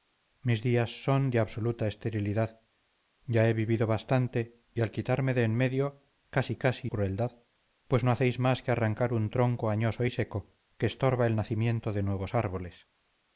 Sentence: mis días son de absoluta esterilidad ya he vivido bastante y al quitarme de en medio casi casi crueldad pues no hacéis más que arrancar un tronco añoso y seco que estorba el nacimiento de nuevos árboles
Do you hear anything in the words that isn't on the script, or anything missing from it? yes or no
no